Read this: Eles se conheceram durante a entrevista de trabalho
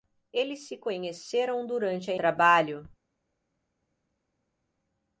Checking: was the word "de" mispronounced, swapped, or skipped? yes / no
yes